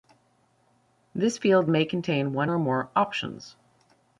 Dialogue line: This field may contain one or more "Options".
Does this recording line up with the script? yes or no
yes